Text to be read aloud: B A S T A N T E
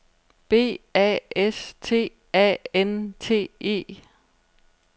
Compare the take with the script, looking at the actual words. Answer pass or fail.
pass